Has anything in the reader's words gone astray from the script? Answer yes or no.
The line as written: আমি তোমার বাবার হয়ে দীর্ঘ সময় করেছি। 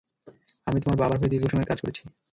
yes